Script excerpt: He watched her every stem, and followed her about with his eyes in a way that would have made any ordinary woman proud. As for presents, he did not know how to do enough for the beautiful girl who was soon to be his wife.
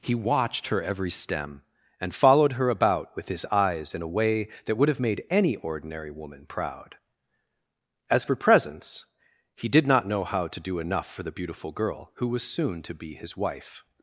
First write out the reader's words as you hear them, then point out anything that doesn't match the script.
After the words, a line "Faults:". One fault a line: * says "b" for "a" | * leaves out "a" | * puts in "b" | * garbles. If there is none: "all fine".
He watched her every stem, and followed her about with his eyes in a way that would have made any ordinary woman proud. As for presents, he did not know how to do enough for the beautiful girl who was soon to be his wife.
Faults:
all fine